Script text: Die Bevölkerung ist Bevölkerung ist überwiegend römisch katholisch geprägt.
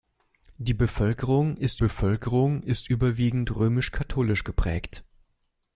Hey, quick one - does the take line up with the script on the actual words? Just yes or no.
yes